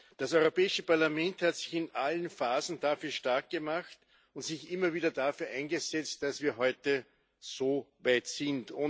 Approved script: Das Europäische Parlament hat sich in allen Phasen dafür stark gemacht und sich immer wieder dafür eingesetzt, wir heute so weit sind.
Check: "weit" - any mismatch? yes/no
no